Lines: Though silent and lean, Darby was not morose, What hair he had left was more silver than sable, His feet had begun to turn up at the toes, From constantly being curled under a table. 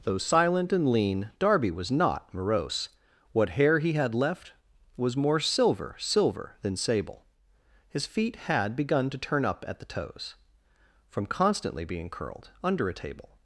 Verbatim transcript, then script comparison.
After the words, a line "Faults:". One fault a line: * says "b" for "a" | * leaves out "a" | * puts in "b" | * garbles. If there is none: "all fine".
Though silent and lean, Darby was not morose, What hair he had left was more silver silver than sable, His feet had begun to turn up at the toes, From constantly being curled under a table.
Faults:
* puts in "silver"